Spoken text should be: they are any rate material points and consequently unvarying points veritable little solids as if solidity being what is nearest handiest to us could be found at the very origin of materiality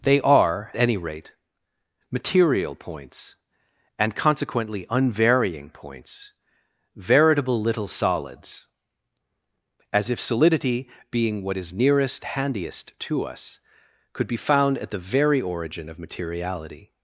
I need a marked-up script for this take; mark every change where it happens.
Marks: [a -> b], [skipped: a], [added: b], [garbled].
they are any rate material points and consequently unvarying points veritable little solids as if solidity being what is nearest handiest to us could be found at the very origin of materiality